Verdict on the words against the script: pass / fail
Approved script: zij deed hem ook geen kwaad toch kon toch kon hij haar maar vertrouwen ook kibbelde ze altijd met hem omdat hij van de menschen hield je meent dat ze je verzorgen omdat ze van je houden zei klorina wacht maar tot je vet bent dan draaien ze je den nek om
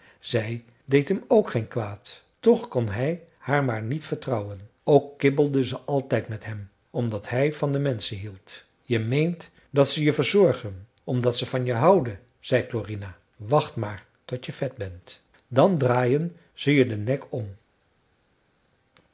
fail